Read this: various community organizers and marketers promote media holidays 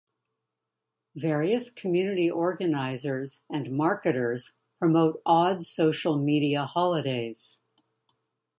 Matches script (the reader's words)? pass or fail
fail